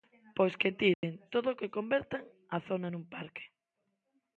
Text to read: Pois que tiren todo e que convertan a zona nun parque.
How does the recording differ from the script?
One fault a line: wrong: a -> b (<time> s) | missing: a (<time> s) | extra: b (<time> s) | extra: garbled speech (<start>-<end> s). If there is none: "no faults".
no faults